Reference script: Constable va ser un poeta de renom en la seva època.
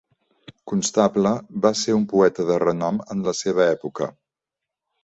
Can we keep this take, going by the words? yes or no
yes